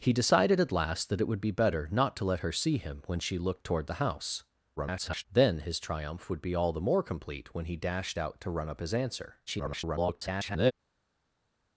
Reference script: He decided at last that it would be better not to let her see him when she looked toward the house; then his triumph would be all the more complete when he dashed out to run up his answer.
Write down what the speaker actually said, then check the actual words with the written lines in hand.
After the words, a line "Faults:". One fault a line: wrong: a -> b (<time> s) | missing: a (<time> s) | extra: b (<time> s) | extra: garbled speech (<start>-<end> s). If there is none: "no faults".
He decided at last that it would be better not to let her see him when she looked toward the house; [garbled] then his triumph would be all the more complete when he dashed out to run up his answer. [garbled]
Faults:
extra: garbled speech (4.8-5.3 s)
extra: garbled speech (9.5-10.7 s)